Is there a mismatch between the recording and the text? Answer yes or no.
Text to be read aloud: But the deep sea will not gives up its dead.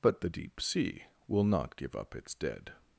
yes